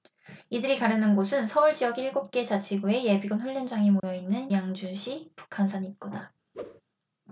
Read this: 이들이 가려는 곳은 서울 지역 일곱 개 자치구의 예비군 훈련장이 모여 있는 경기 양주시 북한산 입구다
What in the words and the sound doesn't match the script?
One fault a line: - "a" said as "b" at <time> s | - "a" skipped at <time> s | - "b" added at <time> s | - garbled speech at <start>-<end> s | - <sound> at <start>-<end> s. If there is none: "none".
- dropout at 4.0-4.0 s
- "경기" skipped at 4.5 s
- whoosh at 6.5-6.8 s